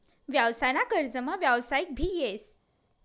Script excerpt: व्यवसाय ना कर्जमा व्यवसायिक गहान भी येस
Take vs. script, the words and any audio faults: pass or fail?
fail